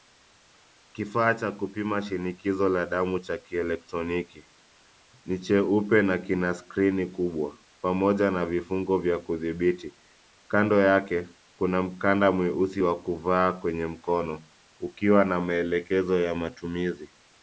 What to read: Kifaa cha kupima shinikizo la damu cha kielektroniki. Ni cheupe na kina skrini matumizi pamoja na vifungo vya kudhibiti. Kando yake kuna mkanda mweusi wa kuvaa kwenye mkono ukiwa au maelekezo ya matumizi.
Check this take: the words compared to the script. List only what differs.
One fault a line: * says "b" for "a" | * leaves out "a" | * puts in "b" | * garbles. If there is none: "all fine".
* says "kubwa" for "matumizi"
* says "na" for "au"